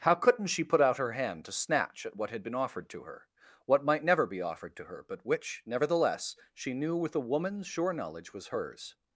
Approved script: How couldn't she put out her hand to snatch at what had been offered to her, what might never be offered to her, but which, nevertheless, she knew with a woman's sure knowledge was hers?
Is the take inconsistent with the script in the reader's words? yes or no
no